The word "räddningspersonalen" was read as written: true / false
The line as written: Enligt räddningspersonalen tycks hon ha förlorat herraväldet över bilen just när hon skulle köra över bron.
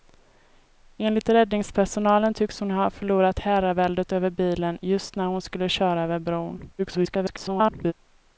true